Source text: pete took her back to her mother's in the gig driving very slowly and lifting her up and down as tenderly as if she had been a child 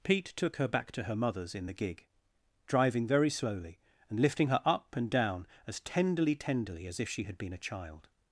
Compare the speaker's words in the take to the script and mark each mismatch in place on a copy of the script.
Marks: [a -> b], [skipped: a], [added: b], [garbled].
pete took her back to her mother's in the gig driving very slowly and lifting her up and down as tenderly [added: tenderly] as if she had been a child